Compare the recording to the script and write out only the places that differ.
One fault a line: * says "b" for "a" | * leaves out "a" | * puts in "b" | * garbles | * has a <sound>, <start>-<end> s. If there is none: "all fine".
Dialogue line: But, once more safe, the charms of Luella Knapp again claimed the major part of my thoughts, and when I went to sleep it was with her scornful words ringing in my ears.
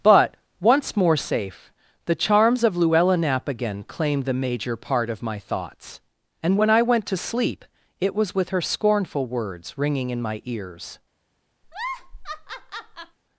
* has a laugh, 11.6-13.2 s